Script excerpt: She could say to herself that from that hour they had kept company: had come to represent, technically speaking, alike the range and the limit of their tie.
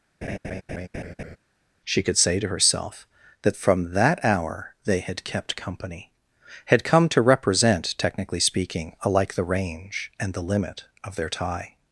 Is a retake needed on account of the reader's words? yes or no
no